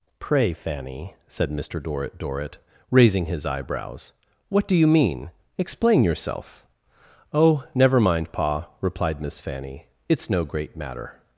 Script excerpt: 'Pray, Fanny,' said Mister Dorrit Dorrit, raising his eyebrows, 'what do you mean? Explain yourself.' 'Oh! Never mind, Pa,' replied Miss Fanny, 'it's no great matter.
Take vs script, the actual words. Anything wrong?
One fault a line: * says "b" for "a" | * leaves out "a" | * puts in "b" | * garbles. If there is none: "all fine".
all fine